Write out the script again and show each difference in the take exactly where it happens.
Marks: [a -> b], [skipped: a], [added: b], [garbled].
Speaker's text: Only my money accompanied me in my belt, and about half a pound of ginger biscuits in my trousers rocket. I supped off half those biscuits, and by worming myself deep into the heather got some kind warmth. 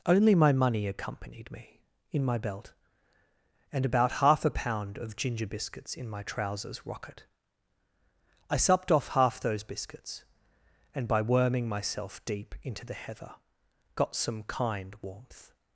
Only my money accompanied me in my belt, and about half a pound of ginger biscuits in my trousers rocket. I supped off half those biscuits, and by worming myself deep into the heather got some kind warmth.